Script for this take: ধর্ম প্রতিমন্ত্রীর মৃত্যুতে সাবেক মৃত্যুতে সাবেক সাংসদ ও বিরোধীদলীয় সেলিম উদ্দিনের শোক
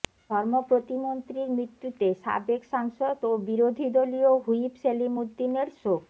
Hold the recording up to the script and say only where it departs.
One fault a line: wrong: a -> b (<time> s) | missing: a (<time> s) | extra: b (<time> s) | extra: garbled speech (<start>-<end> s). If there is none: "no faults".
missing: মৃত্যুতে সাবেক (2.6 s)
extra: হুইপ (4.4 s)